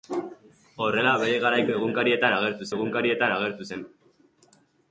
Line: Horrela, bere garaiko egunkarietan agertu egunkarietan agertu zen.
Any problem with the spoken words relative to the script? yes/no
no